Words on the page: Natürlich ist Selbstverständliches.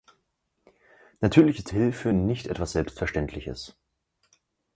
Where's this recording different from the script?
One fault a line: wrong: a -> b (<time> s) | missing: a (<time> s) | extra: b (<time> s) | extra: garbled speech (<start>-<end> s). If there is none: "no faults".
extra: Hilfe nicht etwas (1.7 s)